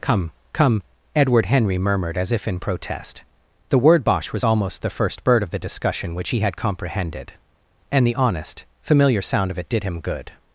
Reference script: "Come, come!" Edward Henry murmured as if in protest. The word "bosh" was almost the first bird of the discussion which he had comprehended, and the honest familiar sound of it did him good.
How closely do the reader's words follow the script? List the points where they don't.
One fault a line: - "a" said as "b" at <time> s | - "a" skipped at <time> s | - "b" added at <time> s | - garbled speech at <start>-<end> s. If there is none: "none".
none